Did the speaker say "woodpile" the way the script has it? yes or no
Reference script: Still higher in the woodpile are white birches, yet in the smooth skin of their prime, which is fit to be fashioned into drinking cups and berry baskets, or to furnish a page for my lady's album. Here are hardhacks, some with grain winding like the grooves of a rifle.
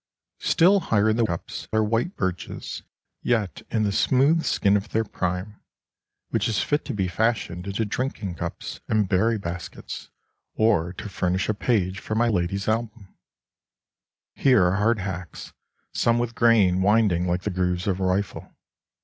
no